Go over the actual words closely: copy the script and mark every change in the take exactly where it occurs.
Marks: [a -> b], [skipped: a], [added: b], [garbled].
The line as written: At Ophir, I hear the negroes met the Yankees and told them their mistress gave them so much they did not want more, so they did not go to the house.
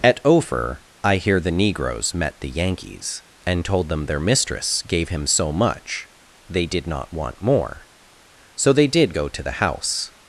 At Ophir, I hear the negroes met the Yankees and told them their mistress gave [them -> him] so much they did not want more, so they did [skipped: not] go to the house.